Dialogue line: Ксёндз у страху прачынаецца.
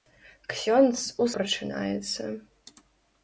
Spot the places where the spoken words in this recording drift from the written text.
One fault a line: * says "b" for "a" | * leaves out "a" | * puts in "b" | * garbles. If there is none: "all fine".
* leaves out "страху"